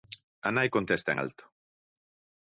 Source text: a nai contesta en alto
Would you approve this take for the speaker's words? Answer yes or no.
yes